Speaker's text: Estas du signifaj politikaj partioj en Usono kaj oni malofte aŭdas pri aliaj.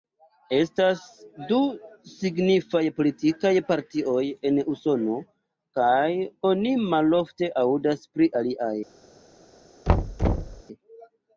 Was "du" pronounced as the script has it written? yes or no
yes